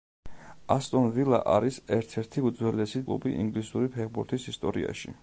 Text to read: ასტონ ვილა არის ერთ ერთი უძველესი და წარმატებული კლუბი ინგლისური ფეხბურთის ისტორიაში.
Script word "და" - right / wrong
wrong